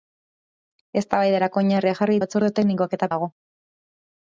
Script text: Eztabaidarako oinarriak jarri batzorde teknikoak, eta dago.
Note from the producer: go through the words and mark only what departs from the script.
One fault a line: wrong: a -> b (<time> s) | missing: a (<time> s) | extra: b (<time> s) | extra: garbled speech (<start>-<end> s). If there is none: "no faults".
no faults